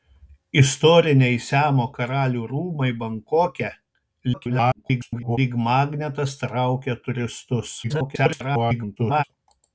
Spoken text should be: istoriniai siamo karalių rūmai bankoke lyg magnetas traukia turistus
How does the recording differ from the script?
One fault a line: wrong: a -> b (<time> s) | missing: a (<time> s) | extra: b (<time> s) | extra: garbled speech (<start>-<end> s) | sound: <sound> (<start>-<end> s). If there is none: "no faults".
extra: garbled speech (4.3-5.4 s)
extra: garbled speech (7.8-9.2 s)